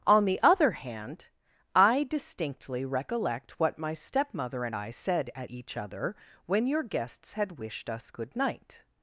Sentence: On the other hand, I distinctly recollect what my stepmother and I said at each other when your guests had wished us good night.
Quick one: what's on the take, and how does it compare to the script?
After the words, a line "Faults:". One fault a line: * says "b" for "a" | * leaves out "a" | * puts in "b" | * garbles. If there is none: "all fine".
On the other hand, I distinctly recollect what my stepmother and I said at each other when your guests had wished us good night.
Faults:
all fine